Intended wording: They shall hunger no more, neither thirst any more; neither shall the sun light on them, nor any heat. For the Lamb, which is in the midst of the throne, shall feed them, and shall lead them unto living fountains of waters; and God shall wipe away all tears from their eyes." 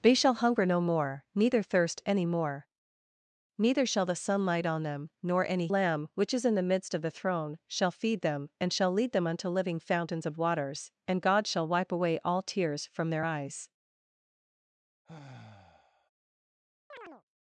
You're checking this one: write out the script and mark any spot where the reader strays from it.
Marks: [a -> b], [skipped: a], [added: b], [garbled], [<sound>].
They shall hunger no more, neither thirst any more; neither shall the sun light on them, nor any [skipped: heat. For the] Lamb, which is in the midst of the throne, shall feed them, and shall lead them unto living fountains of waters; and God shall wipe away all tears from their eyes." [sigh] [chirp]